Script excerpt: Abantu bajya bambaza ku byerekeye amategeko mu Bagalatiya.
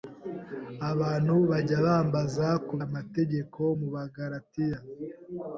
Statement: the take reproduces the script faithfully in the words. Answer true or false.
false